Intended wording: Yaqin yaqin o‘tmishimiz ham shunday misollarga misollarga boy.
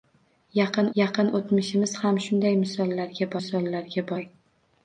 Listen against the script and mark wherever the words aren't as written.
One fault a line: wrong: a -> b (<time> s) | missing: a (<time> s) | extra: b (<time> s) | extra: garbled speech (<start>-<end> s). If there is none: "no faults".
no faults